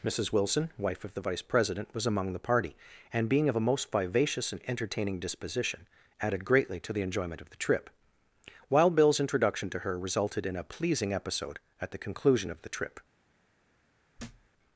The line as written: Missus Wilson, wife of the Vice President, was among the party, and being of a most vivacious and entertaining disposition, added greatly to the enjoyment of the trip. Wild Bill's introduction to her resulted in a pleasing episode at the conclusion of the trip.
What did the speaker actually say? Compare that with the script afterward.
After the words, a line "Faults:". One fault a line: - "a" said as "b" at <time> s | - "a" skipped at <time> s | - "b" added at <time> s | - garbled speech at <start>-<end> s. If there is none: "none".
Missus Wilson, wife of the Vice President, was among the party, and being of a most vivacious and entertaining disposition, added greatly to the enjoyment of the trip. Wild Bill's introduction to her resulted in a pleasing episode at the conclusion of the trip.
Faults:
none